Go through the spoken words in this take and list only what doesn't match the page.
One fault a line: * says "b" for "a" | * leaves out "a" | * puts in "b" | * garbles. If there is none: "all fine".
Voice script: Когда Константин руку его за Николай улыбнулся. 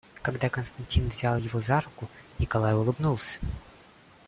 * says "взял" for "руку"
* puts in "руку"